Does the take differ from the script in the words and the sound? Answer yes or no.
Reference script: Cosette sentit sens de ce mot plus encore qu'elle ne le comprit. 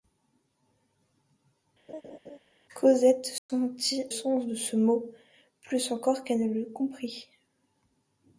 yes